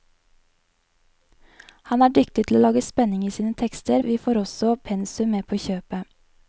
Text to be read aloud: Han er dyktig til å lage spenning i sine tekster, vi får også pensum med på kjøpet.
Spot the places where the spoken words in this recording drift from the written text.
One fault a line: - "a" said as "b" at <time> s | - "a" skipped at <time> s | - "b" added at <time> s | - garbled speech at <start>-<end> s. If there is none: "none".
none